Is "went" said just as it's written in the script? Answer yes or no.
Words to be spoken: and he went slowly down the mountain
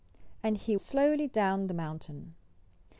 no